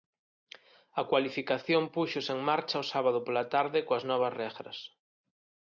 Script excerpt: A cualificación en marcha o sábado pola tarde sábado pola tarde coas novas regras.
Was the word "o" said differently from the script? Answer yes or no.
no